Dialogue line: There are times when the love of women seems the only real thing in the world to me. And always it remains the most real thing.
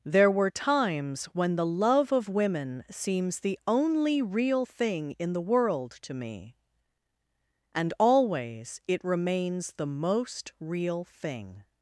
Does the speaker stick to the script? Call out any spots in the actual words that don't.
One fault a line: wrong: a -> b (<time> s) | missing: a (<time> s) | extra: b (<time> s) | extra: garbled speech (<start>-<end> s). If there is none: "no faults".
wrong: are -> were (0.3 s)